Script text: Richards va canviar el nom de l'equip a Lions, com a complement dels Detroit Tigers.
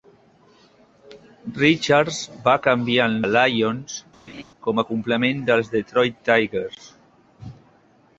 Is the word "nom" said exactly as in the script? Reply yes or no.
no